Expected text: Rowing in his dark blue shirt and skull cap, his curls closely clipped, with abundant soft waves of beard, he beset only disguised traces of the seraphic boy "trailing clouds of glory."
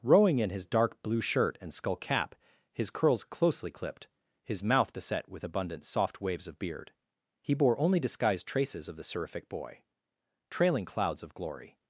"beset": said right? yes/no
no